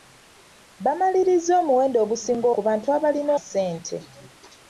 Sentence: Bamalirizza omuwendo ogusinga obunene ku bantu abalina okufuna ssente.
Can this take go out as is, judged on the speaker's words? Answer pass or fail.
fail